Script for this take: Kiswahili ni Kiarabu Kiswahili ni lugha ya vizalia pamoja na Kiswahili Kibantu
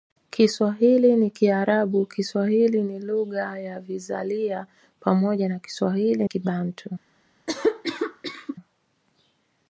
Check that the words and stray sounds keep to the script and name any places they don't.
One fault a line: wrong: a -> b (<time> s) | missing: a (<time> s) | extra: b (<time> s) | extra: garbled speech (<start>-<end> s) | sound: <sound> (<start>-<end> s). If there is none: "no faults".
sound: cough (7.5-8.6 s)